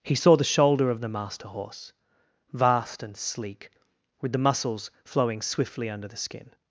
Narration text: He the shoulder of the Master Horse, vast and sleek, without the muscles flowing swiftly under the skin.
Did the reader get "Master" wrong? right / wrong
right